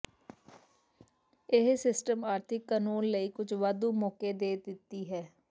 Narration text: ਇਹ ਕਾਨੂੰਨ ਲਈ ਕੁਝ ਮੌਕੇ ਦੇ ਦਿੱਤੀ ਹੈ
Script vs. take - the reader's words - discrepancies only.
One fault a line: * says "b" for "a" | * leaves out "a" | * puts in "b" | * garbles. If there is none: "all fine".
* puts in "ਸਿਸਟਮ ਆਰਥਿਕ"
* puts in "ਵਾਧੂ"